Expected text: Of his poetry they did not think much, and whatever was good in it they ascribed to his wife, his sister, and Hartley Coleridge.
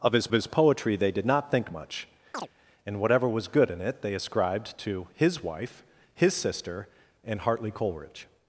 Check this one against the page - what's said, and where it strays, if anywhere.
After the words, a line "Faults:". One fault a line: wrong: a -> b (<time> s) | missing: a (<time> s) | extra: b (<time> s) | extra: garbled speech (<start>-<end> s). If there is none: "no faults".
Of his his poetry they did not think much, and whatever was good in it they ascribed to his wife, his sister, and Hartley Coleridge.
Faults:
extra: his (0.3 s)